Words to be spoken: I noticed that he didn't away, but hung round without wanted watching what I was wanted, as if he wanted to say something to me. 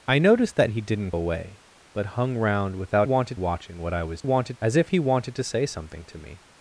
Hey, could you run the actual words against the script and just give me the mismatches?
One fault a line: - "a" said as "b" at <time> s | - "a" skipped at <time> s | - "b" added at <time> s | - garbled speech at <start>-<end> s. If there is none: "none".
none